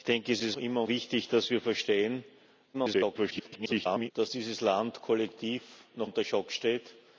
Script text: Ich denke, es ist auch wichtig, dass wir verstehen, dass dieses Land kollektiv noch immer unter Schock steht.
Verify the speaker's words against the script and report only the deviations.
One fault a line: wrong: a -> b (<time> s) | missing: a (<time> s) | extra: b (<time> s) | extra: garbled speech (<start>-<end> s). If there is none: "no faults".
wrong: auch -> immer (0.6 s)
extra: garbled speech (2.7-4.1 s)
missing: immer (6.1 s)